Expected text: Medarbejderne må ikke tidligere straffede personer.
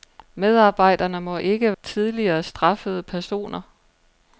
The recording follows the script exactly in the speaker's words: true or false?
true